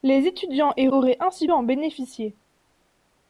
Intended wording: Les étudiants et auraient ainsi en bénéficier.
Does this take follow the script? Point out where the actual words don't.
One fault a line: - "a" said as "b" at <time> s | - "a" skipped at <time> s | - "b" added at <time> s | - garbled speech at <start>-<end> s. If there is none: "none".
none